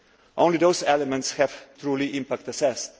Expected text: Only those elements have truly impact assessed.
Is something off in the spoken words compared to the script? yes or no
no